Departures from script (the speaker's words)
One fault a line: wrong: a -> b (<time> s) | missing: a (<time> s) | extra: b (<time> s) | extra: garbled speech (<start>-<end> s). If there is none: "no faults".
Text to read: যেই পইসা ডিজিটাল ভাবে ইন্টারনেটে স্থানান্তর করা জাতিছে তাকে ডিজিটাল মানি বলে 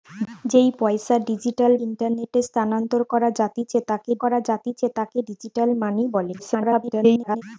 missing: ভাবে (1.7 s)
extra: করা জাতিছে তাকে (4.2 s)
extra: garbled speech (6.4-7.4 s)